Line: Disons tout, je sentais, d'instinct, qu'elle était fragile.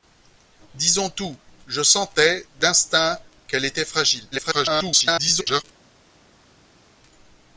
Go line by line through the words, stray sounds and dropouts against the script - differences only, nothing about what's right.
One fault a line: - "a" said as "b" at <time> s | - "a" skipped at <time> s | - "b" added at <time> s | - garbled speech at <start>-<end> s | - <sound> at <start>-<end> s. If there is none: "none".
- garbled speech at 4.3-5.6 s